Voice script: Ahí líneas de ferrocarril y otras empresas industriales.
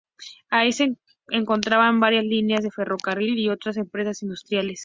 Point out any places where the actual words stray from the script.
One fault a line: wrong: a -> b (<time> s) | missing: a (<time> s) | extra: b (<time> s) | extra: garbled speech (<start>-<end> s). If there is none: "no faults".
extra: se encontraban varias (0.7 s)